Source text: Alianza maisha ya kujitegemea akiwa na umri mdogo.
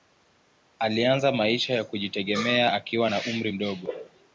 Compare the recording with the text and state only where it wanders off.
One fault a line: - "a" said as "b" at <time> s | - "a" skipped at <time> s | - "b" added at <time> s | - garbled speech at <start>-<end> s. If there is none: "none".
none